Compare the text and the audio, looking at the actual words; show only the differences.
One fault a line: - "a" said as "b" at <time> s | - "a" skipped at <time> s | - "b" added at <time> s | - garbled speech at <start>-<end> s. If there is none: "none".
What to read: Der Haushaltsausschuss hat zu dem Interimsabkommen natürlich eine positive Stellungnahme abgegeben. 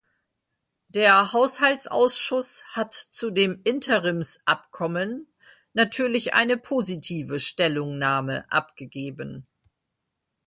none